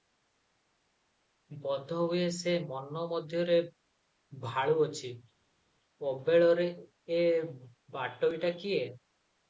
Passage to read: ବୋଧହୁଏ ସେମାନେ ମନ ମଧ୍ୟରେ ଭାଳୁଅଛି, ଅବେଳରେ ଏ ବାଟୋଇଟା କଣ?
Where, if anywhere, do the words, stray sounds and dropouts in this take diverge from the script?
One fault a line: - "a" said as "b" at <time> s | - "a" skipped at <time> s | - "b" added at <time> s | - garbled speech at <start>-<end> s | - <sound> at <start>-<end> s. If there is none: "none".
- "ସେମାନେ" said as "ସେ" at 2.4 s
- "କଣ" said as "କିଏ" at 8.6 s